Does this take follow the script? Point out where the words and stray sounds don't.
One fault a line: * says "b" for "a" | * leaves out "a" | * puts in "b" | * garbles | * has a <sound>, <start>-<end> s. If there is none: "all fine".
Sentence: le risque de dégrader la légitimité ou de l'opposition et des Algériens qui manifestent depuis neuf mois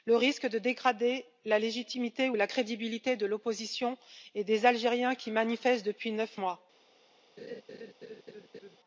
* puts in "la crédibilité"
* has a laugh, 7.4-8.8 s